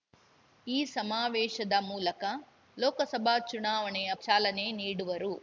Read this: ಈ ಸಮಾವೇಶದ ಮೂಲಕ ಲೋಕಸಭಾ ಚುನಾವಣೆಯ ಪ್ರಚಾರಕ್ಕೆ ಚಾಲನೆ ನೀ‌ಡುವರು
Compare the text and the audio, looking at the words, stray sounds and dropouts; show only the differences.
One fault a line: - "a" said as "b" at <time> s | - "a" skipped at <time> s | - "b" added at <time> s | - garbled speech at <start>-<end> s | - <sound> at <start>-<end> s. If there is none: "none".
- "ಪ್ರಚಾರಕ್ಕೆ" skipped at 4.1 s